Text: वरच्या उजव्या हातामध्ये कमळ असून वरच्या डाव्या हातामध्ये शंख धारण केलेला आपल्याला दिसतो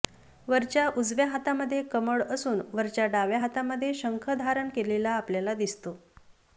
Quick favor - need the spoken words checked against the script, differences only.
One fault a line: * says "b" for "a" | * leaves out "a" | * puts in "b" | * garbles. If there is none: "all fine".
all fine